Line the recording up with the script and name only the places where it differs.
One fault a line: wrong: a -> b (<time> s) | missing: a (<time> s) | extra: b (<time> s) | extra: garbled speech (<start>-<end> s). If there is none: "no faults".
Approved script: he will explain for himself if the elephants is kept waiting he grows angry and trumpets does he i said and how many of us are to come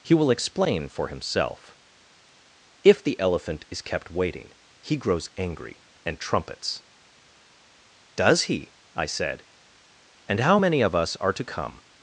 wrong: elephants -> elephant (3.2 s)